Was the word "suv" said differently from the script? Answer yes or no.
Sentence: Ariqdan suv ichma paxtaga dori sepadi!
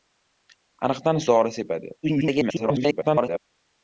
yes